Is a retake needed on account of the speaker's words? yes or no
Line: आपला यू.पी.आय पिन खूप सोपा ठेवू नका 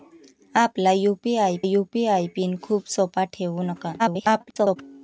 yes